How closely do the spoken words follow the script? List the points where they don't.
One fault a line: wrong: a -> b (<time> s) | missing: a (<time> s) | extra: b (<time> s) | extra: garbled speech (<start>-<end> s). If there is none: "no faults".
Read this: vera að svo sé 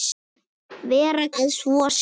no faults